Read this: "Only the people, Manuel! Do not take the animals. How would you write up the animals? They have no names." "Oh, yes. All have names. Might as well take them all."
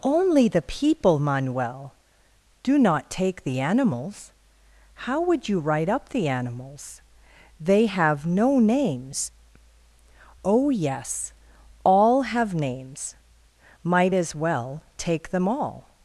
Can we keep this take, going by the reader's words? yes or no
yes